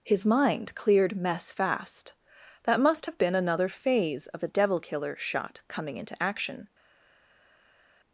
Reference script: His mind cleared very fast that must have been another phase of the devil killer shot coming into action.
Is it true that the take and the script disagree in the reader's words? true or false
true